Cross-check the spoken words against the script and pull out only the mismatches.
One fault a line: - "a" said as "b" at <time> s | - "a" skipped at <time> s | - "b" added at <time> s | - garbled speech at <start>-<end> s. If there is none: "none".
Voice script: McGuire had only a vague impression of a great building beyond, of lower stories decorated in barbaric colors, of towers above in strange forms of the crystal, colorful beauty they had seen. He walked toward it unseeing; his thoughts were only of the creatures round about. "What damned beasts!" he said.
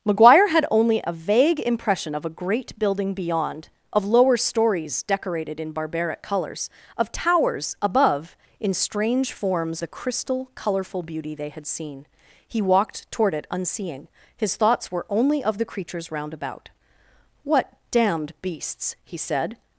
- "of" skipped at 9.8 s